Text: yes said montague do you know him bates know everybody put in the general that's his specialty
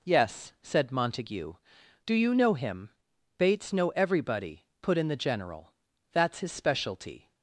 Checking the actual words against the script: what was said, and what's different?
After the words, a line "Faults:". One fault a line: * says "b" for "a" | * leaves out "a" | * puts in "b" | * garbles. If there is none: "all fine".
yes said montague do you know him bates know everybody put in the general that's his specialty
Faults:
all fine